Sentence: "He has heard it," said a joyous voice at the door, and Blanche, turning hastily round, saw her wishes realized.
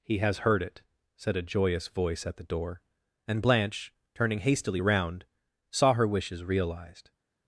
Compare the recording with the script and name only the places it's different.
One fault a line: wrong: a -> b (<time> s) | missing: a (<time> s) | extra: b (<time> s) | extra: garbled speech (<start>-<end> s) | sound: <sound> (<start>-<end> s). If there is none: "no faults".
no faults